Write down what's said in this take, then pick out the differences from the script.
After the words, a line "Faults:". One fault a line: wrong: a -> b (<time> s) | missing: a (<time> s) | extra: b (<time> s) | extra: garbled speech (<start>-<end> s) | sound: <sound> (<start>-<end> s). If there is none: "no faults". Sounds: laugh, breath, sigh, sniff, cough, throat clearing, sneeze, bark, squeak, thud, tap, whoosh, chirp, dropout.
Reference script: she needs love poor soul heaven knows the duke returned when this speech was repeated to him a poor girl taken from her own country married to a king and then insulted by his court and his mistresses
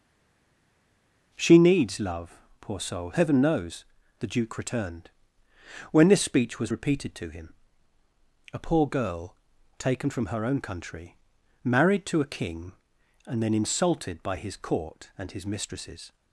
she needs love poor soul heaven knows the duke returned when this speech was repeated to him a poor girl taken from her own country married to a king and then insulted by his court and his mistresses
Faults:
no faults